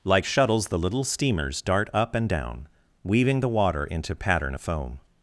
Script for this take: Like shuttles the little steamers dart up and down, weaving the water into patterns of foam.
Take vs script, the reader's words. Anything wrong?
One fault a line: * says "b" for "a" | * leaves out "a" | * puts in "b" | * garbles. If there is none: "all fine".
* says "pattern" for "patterns"